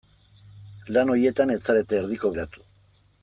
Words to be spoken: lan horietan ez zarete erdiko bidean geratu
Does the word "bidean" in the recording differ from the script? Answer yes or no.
yes